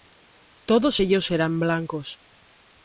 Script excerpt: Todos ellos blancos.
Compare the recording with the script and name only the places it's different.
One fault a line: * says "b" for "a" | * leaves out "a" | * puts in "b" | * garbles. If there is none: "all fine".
* puts in "eran"